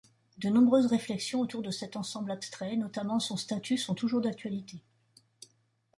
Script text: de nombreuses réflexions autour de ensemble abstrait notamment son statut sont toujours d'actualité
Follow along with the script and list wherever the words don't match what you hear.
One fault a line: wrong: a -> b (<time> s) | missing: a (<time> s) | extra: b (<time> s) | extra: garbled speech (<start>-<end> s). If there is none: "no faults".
extra: cet (1.7 s)